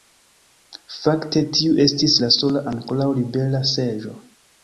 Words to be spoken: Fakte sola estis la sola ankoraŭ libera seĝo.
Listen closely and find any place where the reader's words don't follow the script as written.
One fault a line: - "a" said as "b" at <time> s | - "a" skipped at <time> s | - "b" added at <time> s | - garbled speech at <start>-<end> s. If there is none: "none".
- "sola" said as "tiu" at 1.6 s